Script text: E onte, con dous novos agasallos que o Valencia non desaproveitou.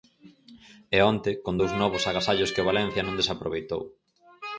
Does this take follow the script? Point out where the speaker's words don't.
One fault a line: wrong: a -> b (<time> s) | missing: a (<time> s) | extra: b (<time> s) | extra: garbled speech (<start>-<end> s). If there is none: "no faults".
no faults